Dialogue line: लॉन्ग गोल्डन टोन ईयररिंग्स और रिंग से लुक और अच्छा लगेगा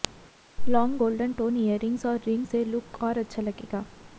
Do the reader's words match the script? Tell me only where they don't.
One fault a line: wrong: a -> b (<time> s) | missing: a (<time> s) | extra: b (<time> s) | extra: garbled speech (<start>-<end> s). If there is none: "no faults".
no faults